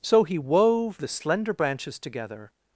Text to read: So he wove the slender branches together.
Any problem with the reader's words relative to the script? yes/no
no